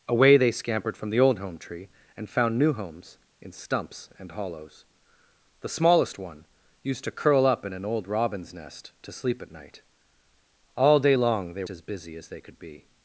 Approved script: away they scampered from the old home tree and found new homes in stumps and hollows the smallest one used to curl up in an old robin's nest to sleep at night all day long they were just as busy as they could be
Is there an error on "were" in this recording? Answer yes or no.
yes